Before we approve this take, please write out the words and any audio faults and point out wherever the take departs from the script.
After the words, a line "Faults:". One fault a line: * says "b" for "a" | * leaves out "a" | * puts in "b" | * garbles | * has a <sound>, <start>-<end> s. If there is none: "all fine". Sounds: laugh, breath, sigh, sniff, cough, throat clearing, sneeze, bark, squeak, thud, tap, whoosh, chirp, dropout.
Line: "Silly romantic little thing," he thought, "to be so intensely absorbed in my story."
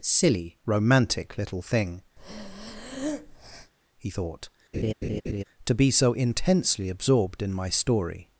"Silly romantic little thing," he thought, "to be so intensely absorbed in my story."
Faults:
* has a breath, 2.2-3.7 s
* has a laugh, 4.7-5.4 s